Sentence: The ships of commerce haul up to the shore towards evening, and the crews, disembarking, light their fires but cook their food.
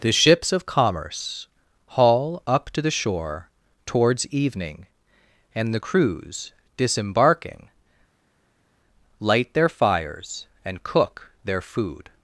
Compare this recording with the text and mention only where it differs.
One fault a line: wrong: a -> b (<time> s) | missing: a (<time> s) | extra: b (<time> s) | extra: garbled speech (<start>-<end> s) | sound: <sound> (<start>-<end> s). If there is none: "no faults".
wrong: but -> and (10.6 s)